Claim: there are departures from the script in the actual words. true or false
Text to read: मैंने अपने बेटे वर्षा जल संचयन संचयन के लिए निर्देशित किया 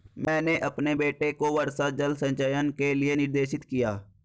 true